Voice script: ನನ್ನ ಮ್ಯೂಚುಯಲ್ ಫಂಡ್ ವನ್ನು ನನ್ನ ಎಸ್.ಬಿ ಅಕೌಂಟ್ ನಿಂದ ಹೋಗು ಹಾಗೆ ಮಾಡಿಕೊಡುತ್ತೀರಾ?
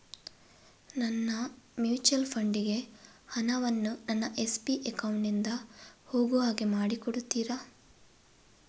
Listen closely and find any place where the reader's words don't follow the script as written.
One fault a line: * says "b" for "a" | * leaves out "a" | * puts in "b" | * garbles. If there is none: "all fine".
* puts in "ಗೆ ಹಣ"